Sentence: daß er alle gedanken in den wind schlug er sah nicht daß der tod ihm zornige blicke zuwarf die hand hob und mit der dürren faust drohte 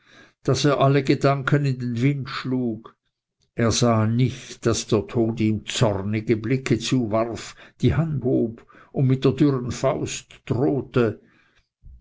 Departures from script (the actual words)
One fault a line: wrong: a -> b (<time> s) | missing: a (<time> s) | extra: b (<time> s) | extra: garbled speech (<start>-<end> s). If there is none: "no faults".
no faults